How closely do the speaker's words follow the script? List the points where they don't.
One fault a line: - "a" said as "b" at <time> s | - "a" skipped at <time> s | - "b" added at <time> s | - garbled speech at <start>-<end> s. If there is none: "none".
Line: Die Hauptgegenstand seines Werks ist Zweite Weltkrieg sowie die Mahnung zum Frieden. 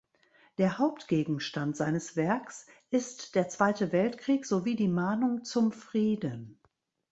- "Die" said as "Der" at 0.6 s
- "der" added at 3.4 s